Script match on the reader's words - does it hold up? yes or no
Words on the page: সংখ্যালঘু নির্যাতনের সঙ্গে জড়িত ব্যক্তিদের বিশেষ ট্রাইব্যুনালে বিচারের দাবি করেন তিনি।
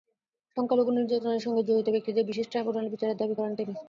yes